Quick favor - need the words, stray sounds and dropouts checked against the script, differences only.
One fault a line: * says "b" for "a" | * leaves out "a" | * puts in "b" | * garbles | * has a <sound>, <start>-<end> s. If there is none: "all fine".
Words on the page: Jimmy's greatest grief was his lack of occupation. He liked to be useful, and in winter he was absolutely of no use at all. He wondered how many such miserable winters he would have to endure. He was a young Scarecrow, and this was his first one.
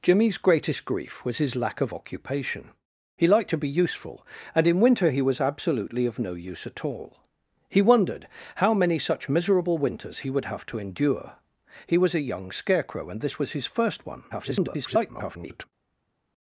* garbles